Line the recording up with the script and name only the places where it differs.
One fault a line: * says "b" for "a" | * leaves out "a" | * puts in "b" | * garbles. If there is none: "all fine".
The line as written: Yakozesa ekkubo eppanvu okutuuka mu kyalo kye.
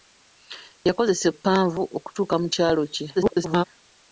* leaves out "ekkubo"
* garbles